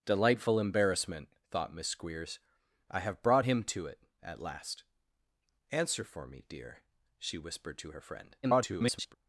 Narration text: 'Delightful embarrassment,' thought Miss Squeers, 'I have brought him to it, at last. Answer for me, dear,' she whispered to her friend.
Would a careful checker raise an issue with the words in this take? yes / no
yes